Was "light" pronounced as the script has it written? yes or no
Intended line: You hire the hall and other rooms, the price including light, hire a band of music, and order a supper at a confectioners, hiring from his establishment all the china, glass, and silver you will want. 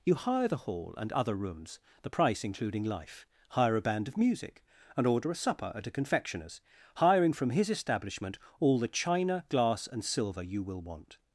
no